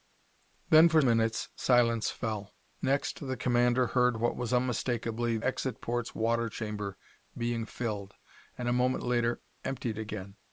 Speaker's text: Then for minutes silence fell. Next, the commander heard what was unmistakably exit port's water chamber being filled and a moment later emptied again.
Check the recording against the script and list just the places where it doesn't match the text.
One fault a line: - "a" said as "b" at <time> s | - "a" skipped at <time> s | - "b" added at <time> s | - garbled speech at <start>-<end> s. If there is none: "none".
none